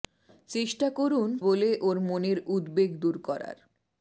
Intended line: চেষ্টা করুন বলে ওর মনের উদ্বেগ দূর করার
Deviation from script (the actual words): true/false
false